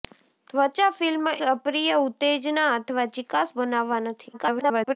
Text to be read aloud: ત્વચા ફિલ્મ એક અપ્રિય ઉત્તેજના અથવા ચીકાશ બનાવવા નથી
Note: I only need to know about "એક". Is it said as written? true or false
false